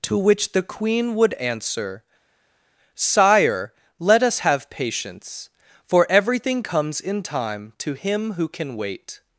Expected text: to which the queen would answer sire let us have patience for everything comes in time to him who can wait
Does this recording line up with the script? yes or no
yes